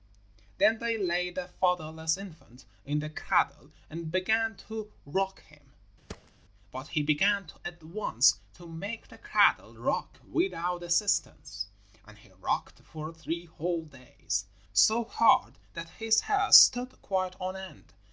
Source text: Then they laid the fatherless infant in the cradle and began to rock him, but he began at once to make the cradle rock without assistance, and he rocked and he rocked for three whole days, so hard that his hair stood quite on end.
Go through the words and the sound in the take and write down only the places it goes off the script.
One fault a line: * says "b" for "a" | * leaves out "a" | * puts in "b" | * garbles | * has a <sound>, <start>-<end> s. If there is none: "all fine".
* has a thud, 6.1-6.3 s
* leaves out "and he rocked"